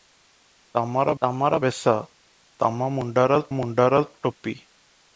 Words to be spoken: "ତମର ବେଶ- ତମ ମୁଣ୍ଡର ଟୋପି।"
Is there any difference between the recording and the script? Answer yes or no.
yes